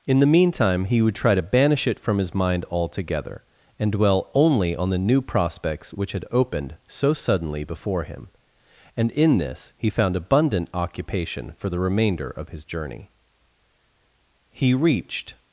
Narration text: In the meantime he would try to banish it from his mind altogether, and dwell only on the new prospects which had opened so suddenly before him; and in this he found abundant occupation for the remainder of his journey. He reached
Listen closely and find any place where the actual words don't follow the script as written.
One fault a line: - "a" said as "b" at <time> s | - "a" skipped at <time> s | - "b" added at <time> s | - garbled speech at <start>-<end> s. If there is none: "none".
none